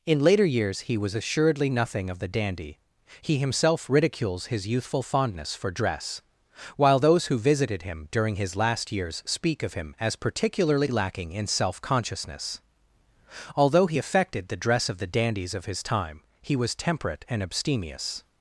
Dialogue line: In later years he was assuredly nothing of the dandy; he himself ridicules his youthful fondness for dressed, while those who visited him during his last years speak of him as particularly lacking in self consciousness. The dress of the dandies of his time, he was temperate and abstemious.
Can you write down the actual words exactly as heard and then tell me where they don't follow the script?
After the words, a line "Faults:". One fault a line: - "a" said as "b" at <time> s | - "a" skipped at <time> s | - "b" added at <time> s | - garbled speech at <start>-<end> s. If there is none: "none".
In later years he was assuredly nothing of the dandy; he himself ridicules his youthful fondness for dress, while those who visited him during his last years speak of him as particularly lacking in self consciousness. Although he affected the dress of the dandies of his time, he was temperate and abstemious.
Faults:
- "dressed" said as "dress" at 5.7 s
- "Although he affected" added at 13.6 s